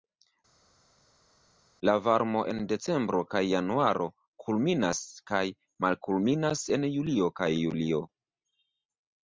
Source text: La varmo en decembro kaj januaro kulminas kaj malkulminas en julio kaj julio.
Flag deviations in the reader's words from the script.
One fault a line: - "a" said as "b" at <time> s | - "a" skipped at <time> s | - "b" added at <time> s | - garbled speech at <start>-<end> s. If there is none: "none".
none